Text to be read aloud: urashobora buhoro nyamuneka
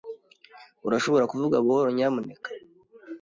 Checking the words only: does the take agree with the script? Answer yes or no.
no